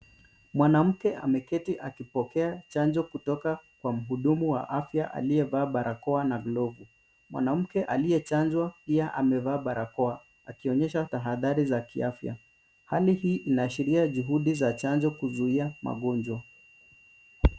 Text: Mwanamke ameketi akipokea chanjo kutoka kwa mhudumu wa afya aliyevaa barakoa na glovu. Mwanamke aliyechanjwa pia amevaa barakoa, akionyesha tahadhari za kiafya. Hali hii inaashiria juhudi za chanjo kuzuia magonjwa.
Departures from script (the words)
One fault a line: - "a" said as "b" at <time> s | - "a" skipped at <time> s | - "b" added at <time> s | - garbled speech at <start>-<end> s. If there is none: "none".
none